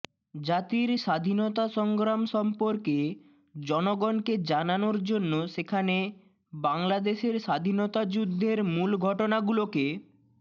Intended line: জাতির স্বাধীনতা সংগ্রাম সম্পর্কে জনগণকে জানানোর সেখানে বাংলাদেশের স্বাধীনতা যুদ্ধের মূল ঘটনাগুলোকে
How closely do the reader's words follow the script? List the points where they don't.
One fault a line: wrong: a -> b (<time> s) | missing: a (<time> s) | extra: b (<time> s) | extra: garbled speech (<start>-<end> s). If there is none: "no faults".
extra: জন্য (5.0 s)